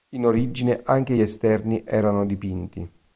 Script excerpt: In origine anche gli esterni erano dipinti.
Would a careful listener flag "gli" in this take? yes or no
yes